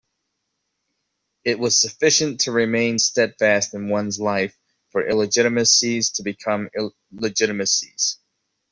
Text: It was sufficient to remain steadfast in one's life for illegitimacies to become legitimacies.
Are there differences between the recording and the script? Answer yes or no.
no